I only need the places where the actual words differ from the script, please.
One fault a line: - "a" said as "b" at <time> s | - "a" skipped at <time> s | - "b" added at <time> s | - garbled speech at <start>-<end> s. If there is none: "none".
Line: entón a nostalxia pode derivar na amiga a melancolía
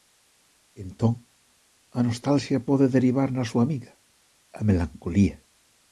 - "súa" added at 3.5 s